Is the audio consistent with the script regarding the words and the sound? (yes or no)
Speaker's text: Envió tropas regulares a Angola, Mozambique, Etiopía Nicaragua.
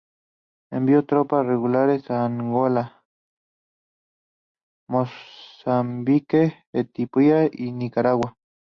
no